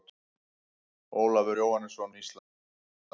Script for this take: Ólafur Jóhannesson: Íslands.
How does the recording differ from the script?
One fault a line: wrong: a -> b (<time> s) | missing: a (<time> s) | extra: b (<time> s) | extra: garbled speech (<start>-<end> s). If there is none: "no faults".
no faults